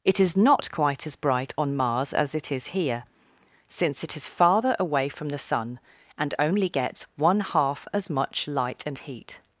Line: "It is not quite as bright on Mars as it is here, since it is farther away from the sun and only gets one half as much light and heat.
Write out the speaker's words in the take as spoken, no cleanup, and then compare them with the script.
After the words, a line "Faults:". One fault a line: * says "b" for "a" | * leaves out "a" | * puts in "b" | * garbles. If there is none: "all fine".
"It is not quite as bright on Mars as it is here, since it is farther away from the sun and only gets one half as much light and heat.
Faults:
all fine